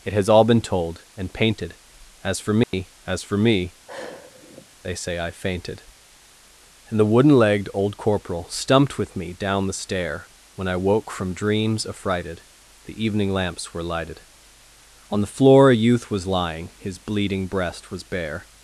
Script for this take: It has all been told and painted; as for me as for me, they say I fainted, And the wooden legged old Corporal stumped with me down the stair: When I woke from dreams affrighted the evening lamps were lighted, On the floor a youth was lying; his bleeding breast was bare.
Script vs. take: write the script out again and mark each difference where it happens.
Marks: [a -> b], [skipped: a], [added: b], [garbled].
It has all been told and painted; as for me as for me, they say I fainted, And the wooden legged old Corporal stumped with me down the stair: When I woke from dreams affrighted the evening lamps were lighted, On the floor a youth was lying; his bleeding breast was bare.